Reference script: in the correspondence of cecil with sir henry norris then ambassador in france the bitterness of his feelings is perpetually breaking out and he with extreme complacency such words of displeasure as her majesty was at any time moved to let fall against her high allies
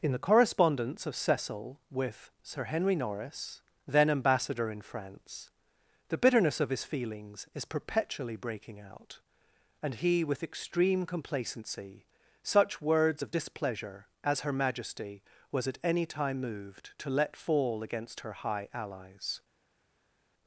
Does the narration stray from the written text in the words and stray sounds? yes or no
no